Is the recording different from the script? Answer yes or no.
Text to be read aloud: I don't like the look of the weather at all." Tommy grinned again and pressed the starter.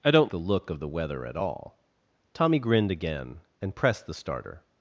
yes